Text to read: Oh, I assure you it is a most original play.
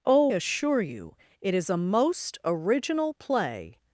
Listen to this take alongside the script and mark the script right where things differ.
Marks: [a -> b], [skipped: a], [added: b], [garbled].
Oh, [skipped: I] assure you it is a most original play.